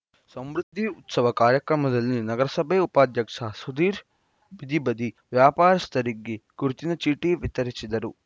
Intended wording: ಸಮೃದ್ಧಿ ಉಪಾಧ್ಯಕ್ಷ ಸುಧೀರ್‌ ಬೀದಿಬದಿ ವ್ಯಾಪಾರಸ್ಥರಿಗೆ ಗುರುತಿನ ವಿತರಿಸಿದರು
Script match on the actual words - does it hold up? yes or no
no